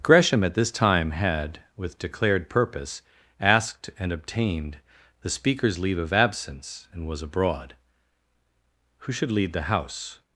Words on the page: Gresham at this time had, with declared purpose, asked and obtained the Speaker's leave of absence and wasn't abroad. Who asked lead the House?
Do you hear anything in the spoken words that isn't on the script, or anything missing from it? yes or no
yes